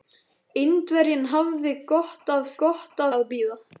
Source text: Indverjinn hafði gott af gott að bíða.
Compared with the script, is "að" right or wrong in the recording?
right